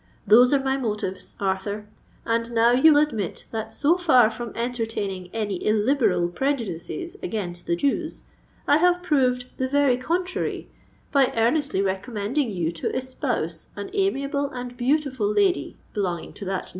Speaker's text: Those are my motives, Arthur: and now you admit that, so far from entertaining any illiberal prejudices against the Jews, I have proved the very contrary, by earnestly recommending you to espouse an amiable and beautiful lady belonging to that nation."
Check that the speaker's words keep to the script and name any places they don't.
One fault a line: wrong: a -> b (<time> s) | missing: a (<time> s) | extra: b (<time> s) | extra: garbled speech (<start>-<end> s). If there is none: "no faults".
no faults